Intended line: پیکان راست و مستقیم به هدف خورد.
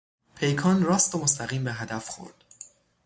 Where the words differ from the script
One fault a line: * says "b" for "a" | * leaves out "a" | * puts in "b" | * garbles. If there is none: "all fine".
all fine